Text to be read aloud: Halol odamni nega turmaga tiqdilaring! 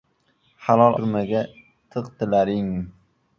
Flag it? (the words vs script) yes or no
yes